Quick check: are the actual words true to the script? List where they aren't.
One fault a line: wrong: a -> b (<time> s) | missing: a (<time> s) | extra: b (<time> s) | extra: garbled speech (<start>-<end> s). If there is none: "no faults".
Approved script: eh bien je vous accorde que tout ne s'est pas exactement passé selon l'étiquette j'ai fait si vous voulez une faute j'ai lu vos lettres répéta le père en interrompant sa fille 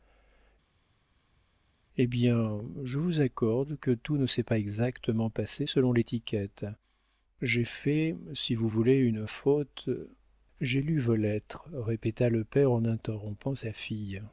no faults